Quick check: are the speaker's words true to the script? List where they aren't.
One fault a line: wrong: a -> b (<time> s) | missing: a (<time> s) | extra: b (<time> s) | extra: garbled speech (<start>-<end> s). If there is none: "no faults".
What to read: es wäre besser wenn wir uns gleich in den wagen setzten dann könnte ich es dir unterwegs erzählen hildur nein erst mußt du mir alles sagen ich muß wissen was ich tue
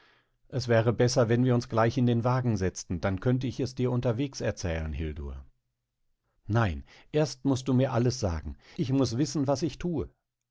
no faults